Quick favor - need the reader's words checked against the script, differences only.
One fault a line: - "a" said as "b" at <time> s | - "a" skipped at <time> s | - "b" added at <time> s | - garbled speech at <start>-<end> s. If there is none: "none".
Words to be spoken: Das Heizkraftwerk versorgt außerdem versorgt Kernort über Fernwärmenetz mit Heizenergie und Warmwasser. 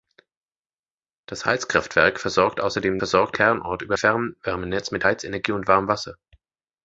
none